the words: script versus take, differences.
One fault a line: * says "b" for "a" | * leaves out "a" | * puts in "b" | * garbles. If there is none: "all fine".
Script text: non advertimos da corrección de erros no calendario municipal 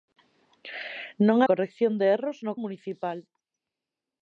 * leaves out "advertimos da"
* leaves out "calendario"